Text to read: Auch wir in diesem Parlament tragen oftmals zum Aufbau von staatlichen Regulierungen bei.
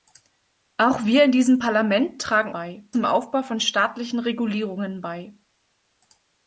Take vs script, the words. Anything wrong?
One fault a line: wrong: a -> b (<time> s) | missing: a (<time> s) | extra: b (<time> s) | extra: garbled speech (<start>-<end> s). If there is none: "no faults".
wrong: oftmals -> bei (2.5 s)